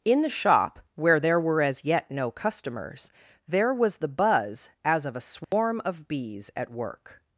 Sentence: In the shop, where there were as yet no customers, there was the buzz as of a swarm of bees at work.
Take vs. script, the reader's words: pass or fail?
pass